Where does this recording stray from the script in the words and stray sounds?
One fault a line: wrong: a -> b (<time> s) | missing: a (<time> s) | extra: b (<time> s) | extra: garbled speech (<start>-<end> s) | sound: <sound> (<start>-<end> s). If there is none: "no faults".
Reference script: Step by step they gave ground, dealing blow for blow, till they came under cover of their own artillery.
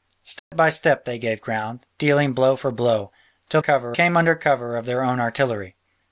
sound: dropout (0.4-0.5 s)
wrong: they -> cover (3.6 s)